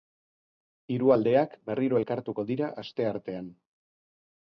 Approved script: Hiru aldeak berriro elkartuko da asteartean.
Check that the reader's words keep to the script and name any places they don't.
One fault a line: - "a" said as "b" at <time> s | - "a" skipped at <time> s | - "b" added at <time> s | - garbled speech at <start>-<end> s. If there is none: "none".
- "da" said as "dira" at 2.5 s